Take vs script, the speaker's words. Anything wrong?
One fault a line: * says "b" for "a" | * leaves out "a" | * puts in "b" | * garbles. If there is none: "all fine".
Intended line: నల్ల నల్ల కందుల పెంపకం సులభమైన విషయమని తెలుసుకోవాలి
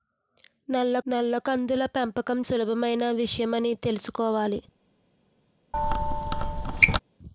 all fine